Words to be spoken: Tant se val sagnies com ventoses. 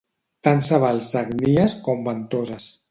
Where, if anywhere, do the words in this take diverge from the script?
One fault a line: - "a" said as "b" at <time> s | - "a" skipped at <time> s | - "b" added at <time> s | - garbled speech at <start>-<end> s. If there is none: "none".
none